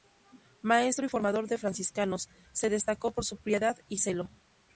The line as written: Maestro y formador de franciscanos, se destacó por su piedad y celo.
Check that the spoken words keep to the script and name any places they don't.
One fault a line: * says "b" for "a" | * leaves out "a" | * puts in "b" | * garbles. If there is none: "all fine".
all fine